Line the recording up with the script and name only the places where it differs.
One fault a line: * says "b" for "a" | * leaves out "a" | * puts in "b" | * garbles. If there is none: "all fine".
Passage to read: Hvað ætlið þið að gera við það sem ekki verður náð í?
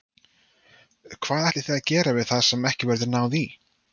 all fine